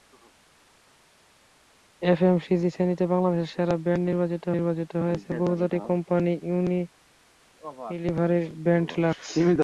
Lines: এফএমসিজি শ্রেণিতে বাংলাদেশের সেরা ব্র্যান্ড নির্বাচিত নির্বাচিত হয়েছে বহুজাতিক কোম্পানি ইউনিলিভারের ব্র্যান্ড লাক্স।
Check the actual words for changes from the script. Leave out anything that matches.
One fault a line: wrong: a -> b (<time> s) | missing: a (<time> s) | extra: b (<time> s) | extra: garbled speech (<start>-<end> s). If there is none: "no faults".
no faults